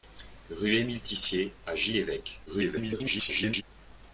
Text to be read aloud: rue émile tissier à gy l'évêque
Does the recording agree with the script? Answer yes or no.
no